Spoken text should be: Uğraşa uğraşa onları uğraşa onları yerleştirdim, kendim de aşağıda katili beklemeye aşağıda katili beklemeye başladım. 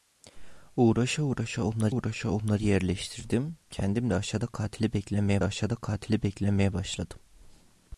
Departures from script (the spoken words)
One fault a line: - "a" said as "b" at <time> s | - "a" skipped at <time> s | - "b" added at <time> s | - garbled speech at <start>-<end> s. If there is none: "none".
none